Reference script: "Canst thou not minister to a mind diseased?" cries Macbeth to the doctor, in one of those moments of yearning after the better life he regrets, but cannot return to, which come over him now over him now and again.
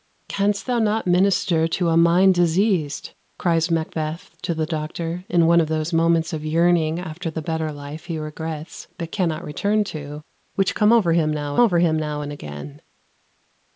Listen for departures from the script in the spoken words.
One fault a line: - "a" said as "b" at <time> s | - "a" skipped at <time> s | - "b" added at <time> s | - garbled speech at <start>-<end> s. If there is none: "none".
none